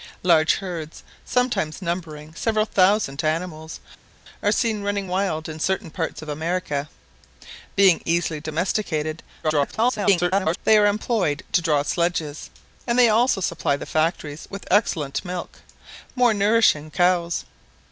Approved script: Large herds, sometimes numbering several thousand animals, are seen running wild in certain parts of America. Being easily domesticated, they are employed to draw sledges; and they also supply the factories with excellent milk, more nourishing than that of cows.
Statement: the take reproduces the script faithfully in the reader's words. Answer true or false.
false